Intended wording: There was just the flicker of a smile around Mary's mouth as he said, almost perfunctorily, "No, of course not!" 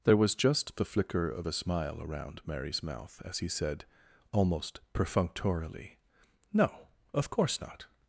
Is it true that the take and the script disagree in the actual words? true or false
false